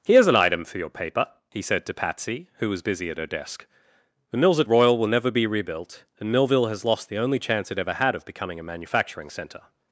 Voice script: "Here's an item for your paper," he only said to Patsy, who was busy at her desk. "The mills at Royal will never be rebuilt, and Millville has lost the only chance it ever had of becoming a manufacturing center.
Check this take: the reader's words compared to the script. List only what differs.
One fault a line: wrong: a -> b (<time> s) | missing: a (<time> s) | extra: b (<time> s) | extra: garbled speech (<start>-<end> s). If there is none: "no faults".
missing: only (1.6 s)